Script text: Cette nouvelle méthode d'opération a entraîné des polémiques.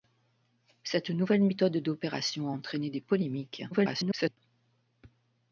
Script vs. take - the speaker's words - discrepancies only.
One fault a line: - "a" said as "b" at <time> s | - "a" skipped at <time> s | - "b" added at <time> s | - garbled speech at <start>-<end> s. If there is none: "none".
- garbled speech at 3.7-4.4 s